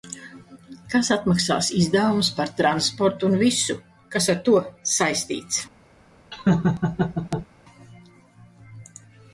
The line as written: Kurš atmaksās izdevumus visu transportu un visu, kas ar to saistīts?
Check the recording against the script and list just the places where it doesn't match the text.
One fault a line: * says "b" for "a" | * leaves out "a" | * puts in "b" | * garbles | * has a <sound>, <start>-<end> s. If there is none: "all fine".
* says "Kas" for "Kurš"
* says "par" for "visu"
* has a laugh, 6.3-7.5 s